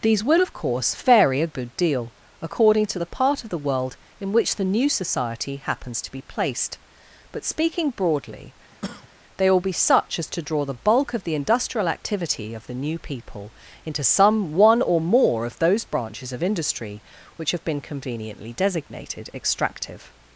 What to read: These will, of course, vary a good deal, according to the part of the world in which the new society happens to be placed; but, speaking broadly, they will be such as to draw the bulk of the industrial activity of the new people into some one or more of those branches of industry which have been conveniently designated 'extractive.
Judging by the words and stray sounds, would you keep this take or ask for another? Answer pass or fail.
fail